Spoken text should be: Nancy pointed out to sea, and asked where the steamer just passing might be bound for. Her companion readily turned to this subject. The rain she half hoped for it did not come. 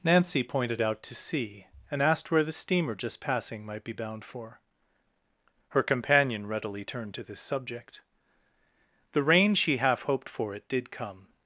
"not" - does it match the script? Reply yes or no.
no